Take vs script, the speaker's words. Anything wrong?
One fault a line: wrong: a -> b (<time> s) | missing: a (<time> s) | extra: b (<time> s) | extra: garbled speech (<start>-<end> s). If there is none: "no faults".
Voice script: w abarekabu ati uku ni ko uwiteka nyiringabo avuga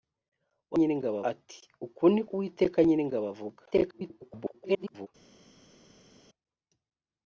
wrong: abarekabu -> nyiringabo (0.8 s)
missing: ko (2.2 s)
extra: garbled speech (3.7-5.1 s)